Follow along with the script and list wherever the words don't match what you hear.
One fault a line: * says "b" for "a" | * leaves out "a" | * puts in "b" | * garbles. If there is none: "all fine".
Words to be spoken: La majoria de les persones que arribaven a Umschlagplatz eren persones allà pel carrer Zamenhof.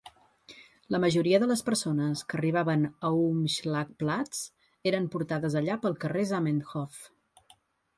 * says "portades" for "persones"